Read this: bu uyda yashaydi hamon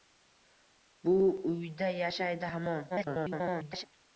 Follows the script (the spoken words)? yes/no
no